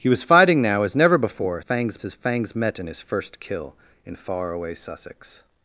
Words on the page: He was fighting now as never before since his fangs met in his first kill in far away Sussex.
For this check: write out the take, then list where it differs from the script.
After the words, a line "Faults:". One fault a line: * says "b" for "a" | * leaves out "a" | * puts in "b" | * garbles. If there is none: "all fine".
He was fighting now as never before fangs his fangs met in his first kill in far away Sussex.
Faults:
* says "fangs" for "since"